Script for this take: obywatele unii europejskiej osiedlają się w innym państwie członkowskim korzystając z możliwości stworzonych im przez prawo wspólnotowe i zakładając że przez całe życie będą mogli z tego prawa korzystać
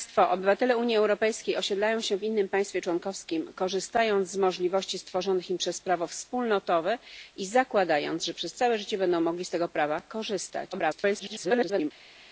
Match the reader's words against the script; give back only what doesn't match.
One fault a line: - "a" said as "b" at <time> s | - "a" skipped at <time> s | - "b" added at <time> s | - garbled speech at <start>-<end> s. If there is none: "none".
- garbled speech at 10.7-11.9 s